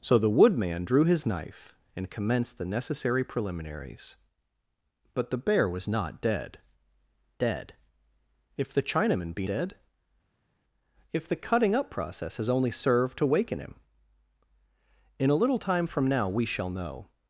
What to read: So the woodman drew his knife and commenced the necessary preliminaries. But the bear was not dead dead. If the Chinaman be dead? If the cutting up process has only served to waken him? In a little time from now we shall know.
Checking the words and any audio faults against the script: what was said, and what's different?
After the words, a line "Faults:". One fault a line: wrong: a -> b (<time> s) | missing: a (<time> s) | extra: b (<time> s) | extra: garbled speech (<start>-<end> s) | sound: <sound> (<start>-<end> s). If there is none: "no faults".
So the woodman drew his knife and commenced the necessary preliminaries. But the bear was not dead dead. If the Chinaman be dead? If the cutting up process has only served to waken him? In a little time from now we shall know.
Faults:
no faults